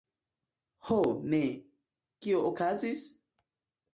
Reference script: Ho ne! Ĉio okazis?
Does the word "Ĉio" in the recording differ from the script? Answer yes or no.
yes